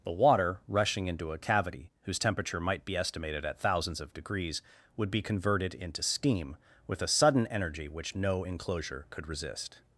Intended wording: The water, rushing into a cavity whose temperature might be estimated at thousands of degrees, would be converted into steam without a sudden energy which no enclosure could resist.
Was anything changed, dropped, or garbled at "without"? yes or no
yes